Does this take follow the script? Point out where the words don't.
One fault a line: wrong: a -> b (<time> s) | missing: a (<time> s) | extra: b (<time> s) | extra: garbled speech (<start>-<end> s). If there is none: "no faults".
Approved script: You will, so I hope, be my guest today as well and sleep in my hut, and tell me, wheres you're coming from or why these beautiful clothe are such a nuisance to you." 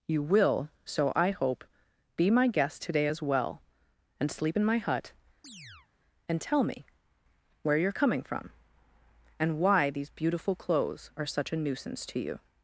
wrong: wheres -> where (7.6 s)
wrong: or -> and (9.4 s)
wrong: clothe -> clothes (10.6 s)